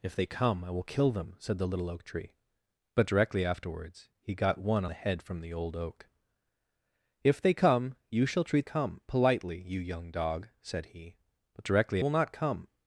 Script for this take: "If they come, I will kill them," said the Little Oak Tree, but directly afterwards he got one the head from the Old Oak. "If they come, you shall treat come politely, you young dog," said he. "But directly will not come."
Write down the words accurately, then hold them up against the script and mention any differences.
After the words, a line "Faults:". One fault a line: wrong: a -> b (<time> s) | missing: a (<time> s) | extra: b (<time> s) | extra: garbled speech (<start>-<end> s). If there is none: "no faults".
"If they come, I will kill them," said the Little Oak Tree, but directly afterwards he got one the head from the Old Oak. "If they come, you shall treat come politely, you young dog," said he. "But directly will not come."
Faults:
no faults